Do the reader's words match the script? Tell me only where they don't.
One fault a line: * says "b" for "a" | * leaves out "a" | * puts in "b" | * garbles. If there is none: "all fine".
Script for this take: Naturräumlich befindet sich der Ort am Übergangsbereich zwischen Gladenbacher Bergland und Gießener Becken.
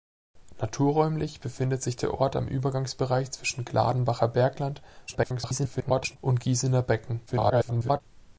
* garbles
* garbles